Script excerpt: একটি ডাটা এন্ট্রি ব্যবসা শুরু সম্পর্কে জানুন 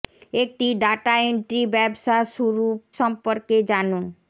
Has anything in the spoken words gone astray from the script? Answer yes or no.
no